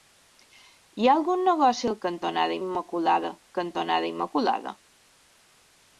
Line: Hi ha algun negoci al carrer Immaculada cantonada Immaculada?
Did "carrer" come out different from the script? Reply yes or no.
yes